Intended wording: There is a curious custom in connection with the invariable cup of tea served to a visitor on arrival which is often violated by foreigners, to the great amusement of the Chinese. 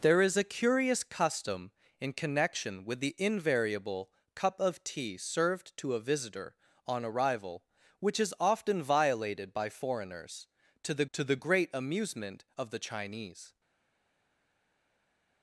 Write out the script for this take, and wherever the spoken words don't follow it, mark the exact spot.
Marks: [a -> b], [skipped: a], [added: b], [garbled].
There is a curious custom in connection with the invariable cup of tea served to a visitor on arrival which is often violated by foreigners, to the [added: to the] great amusement of the Chinese.